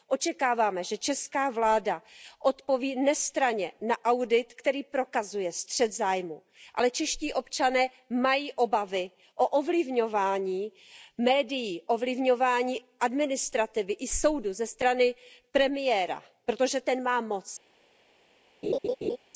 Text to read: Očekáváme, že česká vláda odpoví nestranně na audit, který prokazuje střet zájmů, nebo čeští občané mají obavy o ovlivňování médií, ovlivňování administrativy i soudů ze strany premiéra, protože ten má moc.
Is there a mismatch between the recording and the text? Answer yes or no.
yes